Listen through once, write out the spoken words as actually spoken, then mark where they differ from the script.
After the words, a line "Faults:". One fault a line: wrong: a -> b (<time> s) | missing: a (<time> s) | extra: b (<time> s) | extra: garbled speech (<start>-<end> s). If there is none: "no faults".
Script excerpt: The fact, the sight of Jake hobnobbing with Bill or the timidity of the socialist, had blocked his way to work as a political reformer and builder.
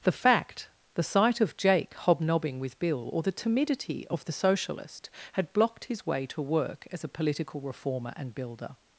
The fact, the sight of Jake hobnobbing with Bill or the timidity of the socialist, had blocked his way to work as a political reformer and builder.
Faults:
no faults